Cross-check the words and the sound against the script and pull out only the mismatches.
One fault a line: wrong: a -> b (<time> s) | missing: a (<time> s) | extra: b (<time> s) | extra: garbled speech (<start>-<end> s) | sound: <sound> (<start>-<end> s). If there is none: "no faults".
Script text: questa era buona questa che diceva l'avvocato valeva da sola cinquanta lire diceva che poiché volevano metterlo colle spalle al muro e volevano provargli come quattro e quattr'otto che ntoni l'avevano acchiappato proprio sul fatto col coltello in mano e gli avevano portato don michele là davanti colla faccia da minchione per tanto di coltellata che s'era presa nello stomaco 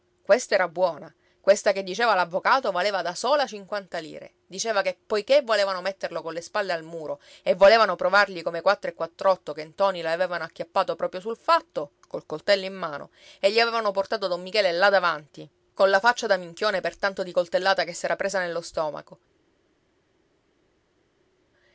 no faults